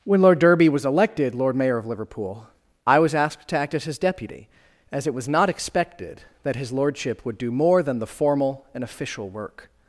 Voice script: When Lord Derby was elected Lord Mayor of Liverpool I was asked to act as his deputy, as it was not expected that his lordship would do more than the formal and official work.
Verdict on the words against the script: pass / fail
pass